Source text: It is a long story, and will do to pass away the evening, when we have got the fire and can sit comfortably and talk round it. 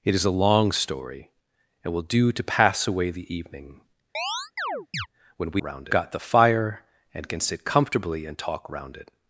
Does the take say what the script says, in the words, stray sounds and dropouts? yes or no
no